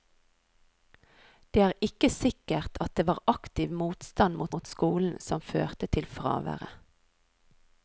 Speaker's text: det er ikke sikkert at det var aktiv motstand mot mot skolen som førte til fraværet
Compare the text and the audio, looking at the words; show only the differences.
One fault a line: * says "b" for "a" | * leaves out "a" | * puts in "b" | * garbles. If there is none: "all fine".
all fine